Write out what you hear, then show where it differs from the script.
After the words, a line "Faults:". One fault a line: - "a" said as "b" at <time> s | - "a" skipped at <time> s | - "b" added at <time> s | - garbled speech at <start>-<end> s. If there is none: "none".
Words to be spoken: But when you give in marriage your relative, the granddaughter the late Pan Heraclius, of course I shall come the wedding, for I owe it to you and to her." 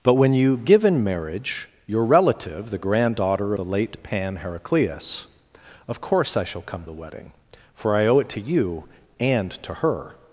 But when you give in marriage your relative, the granddaughter the late Pan Heraclius, of course I shall come the wedding, for I owe it to you and to her."
Faults:
none